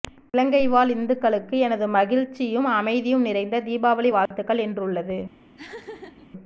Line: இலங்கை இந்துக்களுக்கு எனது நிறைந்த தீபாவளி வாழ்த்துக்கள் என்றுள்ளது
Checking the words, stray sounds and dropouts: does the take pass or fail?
fail